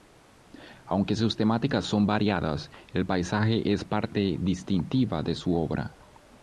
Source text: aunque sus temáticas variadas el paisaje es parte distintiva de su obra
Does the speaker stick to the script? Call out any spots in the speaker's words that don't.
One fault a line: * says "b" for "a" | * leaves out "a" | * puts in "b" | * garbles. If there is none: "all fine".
* puts in "son"